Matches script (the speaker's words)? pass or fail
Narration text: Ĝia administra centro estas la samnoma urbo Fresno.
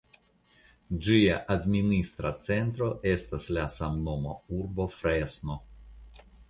pass